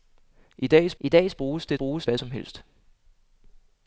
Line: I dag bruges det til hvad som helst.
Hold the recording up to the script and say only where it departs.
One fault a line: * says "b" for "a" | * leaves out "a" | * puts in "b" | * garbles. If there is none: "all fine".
* puts in "I dag"
* says "bruges" for "til"